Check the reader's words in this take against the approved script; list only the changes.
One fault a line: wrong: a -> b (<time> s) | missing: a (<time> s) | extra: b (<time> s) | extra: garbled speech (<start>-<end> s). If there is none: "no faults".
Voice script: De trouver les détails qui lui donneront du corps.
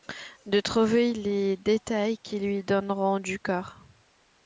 no faults